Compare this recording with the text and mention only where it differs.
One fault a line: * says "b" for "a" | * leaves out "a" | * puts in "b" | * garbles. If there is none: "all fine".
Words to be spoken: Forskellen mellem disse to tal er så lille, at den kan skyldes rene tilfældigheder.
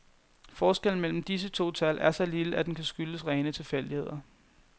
all fine